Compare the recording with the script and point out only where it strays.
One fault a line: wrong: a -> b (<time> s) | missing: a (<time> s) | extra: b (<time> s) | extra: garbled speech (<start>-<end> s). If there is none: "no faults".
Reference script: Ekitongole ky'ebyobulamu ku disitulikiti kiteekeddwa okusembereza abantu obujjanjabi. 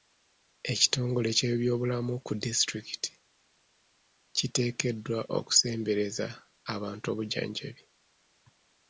no faults